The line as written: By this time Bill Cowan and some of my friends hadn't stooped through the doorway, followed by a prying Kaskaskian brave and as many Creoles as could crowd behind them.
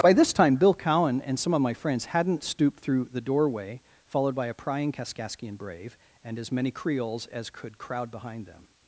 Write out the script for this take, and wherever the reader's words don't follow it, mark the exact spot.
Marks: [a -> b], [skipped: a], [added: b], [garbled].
By this time Bill Cowan and some of my friends hadn't stooped through the doorway, followed by a prying Kaskaskian brave and as many Creoles as could crowd behind them.